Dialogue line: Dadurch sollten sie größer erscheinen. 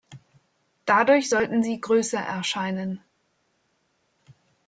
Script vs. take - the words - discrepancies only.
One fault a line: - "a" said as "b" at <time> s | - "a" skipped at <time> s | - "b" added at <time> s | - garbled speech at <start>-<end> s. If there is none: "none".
none